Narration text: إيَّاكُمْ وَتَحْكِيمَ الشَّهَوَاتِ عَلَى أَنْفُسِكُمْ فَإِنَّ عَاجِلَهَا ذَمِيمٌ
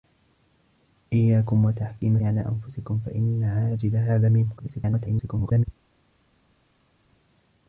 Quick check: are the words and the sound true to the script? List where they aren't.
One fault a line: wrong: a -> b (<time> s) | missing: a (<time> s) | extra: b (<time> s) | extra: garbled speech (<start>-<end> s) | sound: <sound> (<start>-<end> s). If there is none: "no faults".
missing: الشَّهَوَاتِ (2.2 s)
extra: garbled speech (4.6-5.6 s)